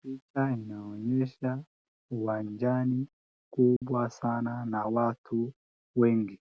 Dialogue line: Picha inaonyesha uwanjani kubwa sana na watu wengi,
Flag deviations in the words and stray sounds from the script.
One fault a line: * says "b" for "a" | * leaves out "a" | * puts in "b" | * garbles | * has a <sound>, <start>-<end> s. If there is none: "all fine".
* has a dropout, 3.8-3.8 s